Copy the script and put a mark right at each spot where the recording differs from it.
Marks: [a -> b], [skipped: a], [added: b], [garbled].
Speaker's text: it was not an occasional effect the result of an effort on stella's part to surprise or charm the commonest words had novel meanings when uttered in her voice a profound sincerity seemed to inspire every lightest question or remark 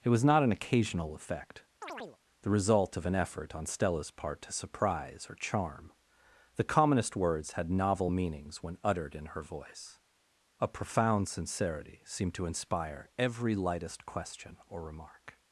it was not an occasional effect the result of an effort on stella's part to surprise or charm the commonest words had novel meanings when uttered in her voice a profound sincerity seemed to inspire every lightest question or remark